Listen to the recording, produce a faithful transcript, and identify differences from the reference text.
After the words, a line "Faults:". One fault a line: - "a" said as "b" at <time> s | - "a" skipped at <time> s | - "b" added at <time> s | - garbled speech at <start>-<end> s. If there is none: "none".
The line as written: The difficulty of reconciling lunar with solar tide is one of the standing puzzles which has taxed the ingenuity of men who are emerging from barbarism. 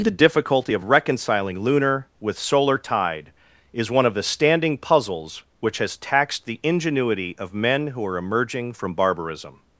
The difficulty of reconciling lunar with solar tide is one of the standing puzzles which has taxed the ingenuity of men who are emerging from barbarism.
Faults:
none